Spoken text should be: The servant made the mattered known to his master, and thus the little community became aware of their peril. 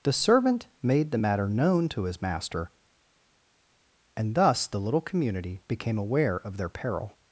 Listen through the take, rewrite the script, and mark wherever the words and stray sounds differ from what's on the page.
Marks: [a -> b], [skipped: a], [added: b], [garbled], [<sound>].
The servant made the [mattered -> matter] known to his master, and thus the little community became aware of their peril.